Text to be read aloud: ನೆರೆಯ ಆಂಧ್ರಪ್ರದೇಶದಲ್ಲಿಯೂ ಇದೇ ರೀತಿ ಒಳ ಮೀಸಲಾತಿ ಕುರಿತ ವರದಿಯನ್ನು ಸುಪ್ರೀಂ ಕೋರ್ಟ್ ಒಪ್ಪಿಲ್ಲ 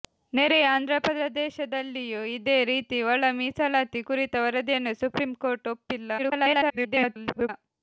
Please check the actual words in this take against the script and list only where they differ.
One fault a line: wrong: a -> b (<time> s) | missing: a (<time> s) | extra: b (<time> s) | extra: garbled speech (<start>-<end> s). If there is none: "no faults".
extra: garbled speech (6.2-7.5 s)